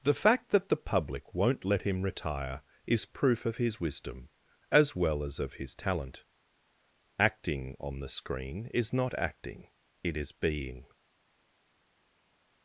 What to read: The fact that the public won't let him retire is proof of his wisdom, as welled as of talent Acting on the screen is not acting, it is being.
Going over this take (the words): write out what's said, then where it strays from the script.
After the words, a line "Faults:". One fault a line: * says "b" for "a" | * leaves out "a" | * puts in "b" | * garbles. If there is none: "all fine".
The fact that the public won't let him retire is proof of his wisdom, as well as of his talent Acting on the screen is not acting, it is being.
Faults:
* says "well" for "welled"
* puts in "his"